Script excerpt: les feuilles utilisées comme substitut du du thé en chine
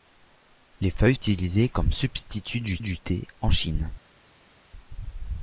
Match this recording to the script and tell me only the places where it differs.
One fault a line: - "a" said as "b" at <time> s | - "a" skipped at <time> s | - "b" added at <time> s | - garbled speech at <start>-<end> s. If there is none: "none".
none